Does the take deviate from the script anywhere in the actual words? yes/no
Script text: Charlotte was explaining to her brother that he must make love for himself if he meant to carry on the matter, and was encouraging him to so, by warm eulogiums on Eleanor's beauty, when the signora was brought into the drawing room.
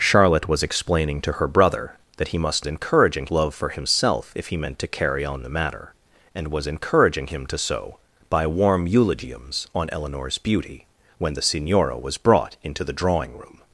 yes